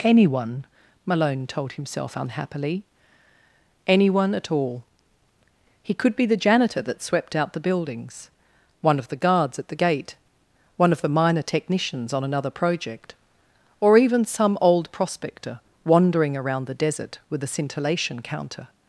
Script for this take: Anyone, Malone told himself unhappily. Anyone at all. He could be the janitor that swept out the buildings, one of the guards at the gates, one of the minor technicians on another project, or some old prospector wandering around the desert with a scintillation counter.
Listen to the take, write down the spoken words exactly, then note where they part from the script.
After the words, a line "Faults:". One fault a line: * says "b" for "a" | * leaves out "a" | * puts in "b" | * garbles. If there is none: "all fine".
Anyone, Malone told himself unhappily. Anyone at all. He could be the janitor that swept out the buildings, one of the guards at the gate, one of the minor technicians on another project, or even some old prospector wandering around the desert with a scintillation counter.
Faults:
* says "gate" for "gates"
* puts in "even"